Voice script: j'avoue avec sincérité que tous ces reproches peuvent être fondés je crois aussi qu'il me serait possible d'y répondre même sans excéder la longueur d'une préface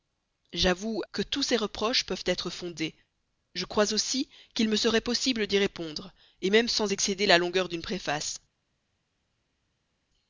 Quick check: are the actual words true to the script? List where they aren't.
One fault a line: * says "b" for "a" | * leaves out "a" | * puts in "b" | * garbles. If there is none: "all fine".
* leaves out "avec sincérité"